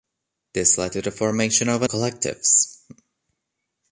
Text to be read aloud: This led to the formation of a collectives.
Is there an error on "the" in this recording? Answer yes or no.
no